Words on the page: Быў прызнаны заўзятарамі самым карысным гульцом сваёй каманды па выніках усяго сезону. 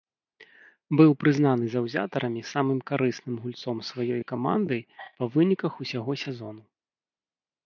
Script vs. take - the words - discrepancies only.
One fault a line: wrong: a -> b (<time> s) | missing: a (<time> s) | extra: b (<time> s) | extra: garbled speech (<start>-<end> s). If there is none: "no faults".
no faults